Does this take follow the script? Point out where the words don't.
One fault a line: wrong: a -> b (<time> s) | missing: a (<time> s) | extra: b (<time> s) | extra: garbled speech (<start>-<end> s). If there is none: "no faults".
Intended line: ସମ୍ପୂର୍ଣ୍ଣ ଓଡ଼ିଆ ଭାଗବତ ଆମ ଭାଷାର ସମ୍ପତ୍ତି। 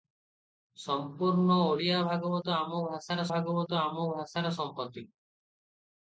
extra: ଭାଗବତ ଆମ ଭାଷାର (3.3 s)